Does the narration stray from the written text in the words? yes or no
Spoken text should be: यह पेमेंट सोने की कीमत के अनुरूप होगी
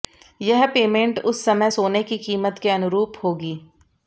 yes